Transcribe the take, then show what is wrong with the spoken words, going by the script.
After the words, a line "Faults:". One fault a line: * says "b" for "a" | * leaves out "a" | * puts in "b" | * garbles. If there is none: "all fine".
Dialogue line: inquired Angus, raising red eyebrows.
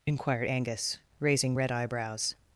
inquired Angus, raising red eyebrows.
Faults:
all fine